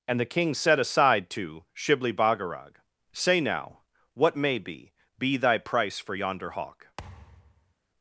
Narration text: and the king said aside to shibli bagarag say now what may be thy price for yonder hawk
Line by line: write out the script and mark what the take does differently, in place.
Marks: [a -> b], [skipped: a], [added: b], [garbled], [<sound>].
and the king said aside to shibli bagarag say now what may be [added: be] thy price for yonder hawk [thud]